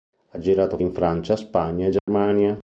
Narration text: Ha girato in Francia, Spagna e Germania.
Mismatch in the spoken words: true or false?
false